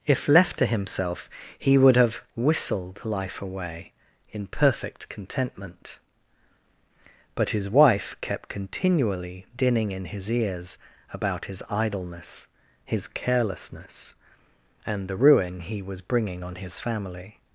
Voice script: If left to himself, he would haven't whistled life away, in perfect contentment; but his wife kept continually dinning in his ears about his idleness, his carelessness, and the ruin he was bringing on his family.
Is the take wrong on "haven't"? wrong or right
wrong